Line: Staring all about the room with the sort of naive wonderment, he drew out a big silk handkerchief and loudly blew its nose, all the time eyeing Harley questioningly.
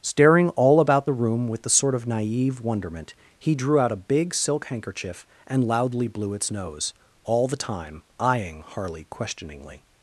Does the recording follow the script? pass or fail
pass